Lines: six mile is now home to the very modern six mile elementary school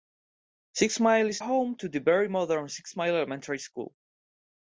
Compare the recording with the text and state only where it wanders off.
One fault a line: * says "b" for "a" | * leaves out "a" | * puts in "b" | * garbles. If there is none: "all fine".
* leaves out "now"